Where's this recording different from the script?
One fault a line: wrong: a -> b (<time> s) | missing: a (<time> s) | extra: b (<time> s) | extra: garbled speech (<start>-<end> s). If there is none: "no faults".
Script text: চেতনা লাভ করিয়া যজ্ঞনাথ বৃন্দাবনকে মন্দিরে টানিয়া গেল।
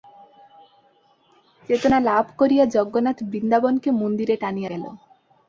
no faults